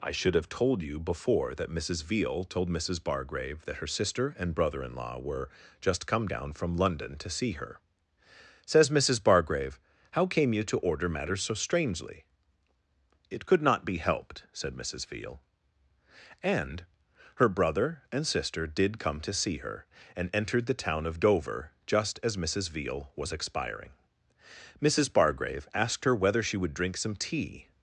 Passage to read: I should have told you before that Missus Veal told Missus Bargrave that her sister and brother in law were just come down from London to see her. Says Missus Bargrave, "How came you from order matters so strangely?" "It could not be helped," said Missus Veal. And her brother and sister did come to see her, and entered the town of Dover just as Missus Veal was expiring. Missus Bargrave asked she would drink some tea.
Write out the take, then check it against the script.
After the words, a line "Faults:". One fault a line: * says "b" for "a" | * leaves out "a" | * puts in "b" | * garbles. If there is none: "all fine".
I should have told you before that Missus Veal told Missus Bargrave that her sister and brother in law were just come down from London to see her. Says Missus Bargrave, "How came you to order matters so strangely?" "It could not be helped," said Missus Veal. And her brother and sister did come to see her, and entered the town of Dover just as Missus Veal was expiring. Missus Bargrave asked her whether she would drink some tea.
Faults:
* says "to" for "from"
* puts in "her whether"